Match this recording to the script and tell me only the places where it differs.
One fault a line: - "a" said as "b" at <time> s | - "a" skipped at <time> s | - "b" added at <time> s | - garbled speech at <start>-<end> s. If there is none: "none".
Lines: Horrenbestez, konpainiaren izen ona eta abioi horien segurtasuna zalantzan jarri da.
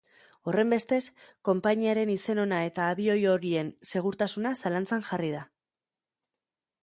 none